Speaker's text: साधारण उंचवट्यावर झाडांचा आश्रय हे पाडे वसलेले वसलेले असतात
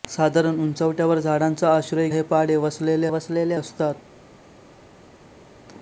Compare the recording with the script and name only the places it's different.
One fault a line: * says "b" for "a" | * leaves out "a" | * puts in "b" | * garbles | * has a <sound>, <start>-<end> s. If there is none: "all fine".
all fine